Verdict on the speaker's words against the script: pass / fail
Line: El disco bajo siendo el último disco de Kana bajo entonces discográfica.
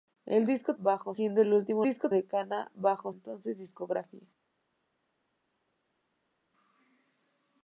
pass